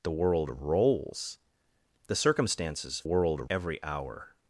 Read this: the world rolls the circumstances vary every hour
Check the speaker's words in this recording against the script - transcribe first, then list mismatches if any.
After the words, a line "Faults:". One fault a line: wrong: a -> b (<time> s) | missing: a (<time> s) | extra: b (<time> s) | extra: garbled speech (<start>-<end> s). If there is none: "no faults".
the world rolls the circumstances world every hour
Faults:
wrong: vary -> world (3.0 s)